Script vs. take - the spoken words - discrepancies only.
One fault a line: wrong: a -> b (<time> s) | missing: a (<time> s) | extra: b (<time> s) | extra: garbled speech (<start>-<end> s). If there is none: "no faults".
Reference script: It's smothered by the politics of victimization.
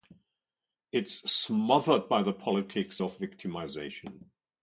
no faults